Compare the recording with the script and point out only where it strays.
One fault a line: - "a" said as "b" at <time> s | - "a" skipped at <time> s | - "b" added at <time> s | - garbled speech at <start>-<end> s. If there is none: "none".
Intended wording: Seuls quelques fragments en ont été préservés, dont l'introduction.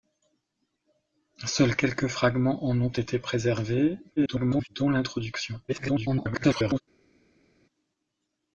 - garbled speech at 4.2-4.7 s
- garbled speech at 5.7-6.8 s